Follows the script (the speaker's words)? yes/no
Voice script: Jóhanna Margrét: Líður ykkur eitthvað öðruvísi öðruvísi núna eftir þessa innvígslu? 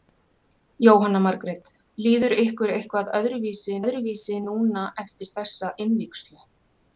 yes